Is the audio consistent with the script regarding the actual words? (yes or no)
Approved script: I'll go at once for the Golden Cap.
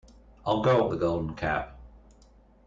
no